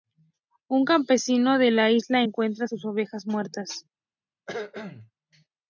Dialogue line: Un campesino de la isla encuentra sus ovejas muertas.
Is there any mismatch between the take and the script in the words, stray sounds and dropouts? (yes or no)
yes